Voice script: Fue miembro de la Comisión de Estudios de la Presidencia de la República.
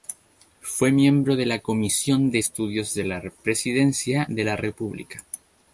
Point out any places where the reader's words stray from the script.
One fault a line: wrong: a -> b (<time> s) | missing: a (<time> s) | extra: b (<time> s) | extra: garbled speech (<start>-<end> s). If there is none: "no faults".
no faults